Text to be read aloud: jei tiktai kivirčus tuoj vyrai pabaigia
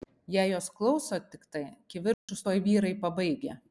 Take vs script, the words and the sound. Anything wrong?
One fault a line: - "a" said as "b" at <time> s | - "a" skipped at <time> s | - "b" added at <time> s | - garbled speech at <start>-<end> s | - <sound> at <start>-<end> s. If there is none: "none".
- "jos klauso" added at 0.5 s
- dropout at 2.1-2.3 s